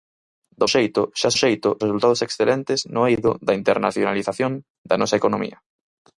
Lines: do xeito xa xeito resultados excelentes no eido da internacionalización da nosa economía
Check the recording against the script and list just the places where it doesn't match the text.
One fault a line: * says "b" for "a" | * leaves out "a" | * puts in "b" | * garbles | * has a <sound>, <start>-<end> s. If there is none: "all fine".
all fine